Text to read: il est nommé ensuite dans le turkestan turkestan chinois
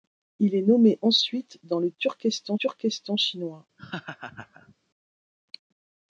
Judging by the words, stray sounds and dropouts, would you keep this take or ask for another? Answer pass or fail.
fail